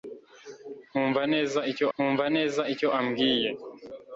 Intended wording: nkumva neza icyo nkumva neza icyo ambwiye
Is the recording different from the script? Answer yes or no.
no